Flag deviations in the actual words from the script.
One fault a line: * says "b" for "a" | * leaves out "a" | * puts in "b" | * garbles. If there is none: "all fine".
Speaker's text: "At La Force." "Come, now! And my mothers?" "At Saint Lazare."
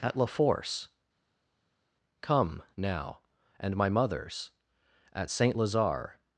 all fine